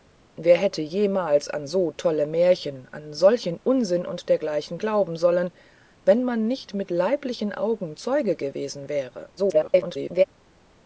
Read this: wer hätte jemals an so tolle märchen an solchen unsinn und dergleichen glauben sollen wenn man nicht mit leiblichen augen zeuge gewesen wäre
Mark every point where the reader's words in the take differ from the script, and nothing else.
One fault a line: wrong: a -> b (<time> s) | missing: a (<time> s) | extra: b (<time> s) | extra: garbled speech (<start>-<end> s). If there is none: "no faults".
extra: garbled speech (9.4-10.2 s)